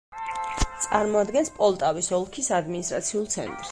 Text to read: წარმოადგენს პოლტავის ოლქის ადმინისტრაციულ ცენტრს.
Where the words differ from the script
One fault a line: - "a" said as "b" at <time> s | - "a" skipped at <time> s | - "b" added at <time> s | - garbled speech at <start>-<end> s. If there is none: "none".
none